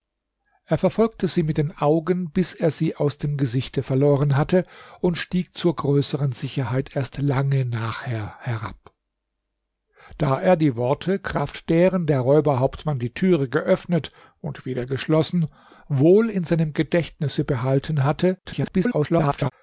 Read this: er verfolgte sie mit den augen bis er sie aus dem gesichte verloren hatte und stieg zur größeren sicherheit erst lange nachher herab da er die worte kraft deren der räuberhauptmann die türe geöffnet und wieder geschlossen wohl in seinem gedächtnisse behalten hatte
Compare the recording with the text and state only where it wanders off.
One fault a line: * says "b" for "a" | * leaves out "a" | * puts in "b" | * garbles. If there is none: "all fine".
* garbles